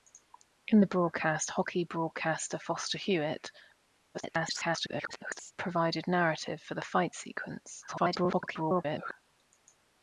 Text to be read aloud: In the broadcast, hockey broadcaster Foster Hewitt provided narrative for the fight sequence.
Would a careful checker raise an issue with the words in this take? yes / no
yes